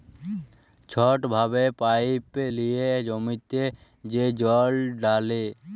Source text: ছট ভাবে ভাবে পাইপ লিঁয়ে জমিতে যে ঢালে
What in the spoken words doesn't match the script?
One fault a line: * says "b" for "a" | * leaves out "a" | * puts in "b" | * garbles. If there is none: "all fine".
* leaves out "ভাবে"
* puts in "জল"